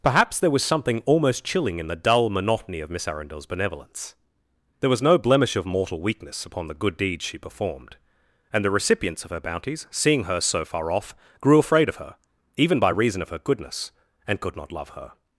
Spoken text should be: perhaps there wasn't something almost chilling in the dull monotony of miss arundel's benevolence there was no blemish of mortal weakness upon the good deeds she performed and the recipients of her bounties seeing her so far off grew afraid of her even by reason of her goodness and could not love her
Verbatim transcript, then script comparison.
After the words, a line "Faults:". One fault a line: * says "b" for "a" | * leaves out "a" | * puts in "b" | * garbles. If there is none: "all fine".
perhaps there was something almost chilling in the dull monotony of miss arundel's benevolence there was no blemish of mortal weakness upon the good deeds she performed and the recipients of her bounties seeing her so far off grew afraid of her even by reason of her goodness and could not love her
Faults:
* says "was" for "wasn't"